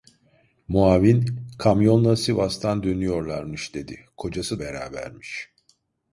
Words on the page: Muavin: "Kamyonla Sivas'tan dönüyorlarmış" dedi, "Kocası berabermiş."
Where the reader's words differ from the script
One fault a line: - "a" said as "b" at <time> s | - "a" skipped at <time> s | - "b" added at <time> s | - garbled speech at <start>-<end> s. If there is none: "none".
none